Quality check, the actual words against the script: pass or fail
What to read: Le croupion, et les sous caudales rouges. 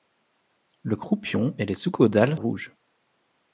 pass